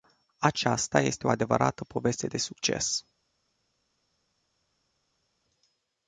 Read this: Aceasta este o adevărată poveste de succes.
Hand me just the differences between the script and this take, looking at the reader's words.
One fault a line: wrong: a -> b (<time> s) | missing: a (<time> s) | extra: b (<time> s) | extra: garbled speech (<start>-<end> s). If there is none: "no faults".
no faults